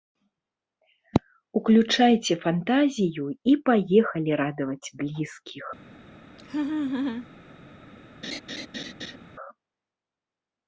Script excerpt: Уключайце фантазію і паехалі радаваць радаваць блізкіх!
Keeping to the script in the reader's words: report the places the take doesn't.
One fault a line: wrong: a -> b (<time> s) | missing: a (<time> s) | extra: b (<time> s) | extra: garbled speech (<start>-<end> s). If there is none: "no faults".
missing: радаваць (4.9 s)